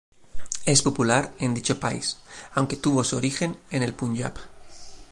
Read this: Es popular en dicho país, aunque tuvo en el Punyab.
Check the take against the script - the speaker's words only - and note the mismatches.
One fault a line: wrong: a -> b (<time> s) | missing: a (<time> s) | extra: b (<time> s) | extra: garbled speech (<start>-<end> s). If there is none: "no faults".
extra: su origen (3.0 s)